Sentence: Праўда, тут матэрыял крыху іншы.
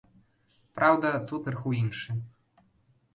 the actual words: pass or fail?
fail